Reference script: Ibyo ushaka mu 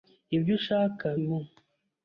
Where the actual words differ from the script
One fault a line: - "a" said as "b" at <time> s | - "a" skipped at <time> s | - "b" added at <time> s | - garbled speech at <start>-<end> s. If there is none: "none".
none